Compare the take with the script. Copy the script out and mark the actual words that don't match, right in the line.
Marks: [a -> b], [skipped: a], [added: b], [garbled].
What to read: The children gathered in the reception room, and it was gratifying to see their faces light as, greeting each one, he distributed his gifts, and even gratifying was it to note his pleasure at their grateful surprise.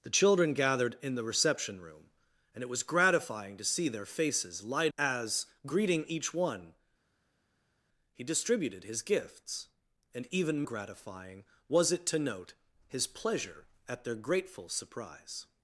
The children gathered in the reception room, and it was gratifying to see their faces light as, greeting each one, he distributed his gifts, and even gratifying was it to note his pleasure at their grateful surprise.